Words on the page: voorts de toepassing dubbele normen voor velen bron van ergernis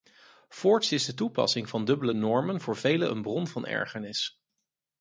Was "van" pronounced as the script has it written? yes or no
yes